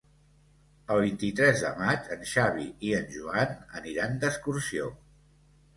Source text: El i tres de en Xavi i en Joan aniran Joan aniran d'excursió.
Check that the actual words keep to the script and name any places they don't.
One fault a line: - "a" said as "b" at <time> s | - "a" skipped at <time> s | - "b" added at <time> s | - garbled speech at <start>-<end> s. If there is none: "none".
- "vint" added at 1.0 s
- "maig" added at 1.8 s
- "Joan aniran" skipped at 4.2 s